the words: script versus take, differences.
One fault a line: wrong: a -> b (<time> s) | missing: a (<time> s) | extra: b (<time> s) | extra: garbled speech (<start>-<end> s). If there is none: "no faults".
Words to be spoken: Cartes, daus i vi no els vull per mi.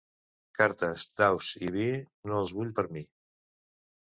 no faults